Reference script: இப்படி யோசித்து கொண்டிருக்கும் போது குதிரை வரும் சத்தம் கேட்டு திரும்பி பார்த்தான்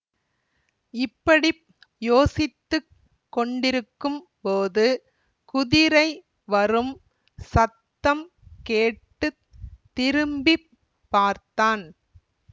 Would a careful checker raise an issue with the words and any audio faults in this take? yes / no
no